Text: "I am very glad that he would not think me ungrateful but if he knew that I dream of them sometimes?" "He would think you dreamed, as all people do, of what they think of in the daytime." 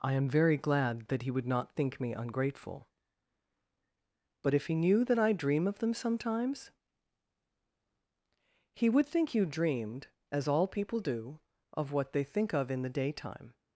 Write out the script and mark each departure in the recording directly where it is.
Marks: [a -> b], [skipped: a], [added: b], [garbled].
"I am very glad that he would not think me ungrateful but if he knew that I dream of them sometimes?" "He would think you dreamed, as all people do, of what they think of in the daytime."